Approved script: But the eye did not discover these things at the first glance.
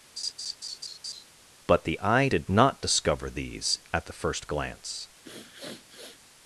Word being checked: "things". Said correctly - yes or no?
no